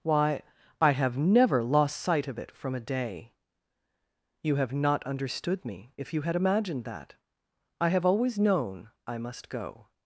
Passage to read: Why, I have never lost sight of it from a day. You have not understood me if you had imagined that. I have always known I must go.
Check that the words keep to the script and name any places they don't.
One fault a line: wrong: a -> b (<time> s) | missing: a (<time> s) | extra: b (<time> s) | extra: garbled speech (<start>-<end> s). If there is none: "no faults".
no faults